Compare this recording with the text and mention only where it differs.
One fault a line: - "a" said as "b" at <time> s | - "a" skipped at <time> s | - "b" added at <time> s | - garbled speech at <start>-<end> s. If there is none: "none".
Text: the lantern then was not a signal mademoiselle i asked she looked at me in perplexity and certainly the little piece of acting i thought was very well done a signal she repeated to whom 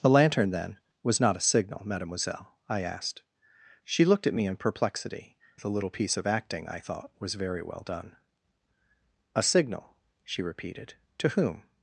- "and certainly" skipped at 5.4 s